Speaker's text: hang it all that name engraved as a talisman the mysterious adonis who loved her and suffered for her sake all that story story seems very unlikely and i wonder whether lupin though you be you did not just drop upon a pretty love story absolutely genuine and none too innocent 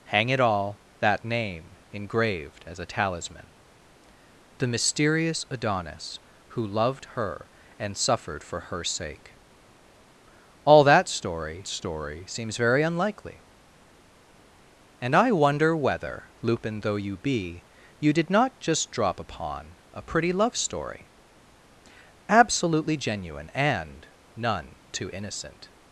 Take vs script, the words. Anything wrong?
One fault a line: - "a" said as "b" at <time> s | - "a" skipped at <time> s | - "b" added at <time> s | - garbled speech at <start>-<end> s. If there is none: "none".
none